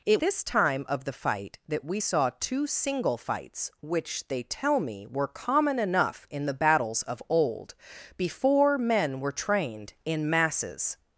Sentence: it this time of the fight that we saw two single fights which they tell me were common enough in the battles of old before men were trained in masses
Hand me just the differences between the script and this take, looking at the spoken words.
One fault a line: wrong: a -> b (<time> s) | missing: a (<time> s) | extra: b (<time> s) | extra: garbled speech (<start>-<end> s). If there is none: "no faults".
no faults